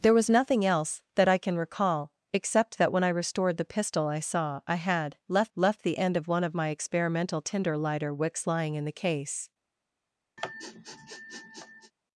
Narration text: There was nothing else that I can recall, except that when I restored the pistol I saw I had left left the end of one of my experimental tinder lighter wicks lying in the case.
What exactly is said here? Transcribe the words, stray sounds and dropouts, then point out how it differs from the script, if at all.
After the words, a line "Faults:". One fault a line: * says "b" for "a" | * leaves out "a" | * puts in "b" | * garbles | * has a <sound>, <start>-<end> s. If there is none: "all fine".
There was nothing else that I can recall, except that when I restored the pistol I saw I had left left the end of one of my experimental tinder lighter wicks lying in the case.
Faults:
* has a sniff, 10.4-11.9 s